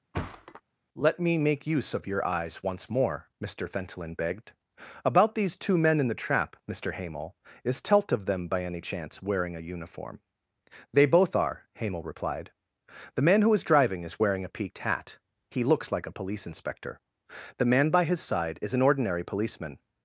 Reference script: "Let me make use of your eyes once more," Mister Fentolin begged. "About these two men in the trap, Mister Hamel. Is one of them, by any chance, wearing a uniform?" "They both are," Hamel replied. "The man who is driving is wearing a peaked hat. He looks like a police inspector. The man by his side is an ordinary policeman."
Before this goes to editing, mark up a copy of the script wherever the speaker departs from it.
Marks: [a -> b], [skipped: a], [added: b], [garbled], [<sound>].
[thud] "Let me make use of your eyes once more," Mister Fentolin begged. "About these two men in the trap, Mister Hamel. Is [one -> telt] of them, by any chance, wearing a uniform?" "They both are," Hamel replied. "The man who is driving is wearing a peaked hat. He looks like a police inspector. The man by his side is an ordinary policeman."